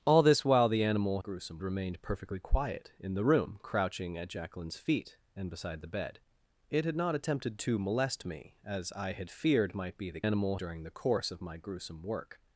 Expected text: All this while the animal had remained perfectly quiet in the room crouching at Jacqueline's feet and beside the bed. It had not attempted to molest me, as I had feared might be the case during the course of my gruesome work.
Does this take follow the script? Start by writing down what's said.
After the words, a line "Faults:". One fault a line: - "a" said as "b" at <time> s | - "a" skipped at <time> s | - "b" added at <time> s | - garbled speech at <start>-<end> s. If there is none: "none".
All this while the animal gruesome remained perfectly quiet in the room crouching at Jacqueline's feet and beside the bed. It had not attempted to molest me, as I had feared might be the animal during the course of my gruesome work.
Faults:
- "had" said as "gruesome" at 1.2 s
- "case" said as "animal" at 10.2 s